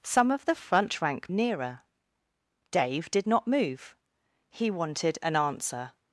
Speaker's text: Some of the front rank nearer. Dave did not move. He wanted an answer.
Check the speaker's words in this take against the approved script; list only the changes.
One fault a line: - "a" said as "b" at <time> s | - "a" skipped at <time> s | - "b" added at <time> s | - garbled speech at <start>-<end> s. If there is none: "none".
none